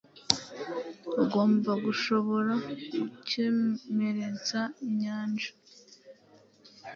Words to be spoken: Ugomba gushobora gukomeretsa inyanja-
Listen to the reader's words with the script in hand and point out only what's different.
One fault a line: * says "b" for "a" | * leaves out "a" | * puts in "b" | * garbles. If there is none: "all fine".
all fine